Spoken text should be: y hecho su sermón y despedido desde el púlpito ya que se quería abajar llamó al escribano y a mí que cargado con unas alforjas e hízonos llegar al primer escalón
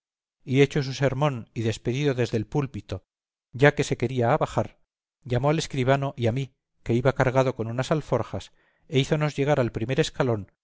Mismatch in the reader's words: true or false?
true